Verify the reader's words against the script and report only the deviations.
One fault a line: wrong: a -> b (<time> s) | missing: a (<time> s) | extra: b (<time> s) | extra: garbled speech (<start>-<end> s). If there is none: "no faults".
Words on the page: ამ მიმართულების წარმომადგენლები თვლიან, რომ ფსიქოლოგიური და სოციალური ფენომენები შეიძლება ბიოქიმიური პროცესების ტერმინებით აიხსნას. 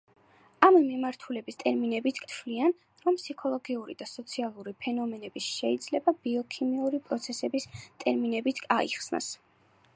wrong: წარმომადგენლები -> ტერმინებით (1.7 s)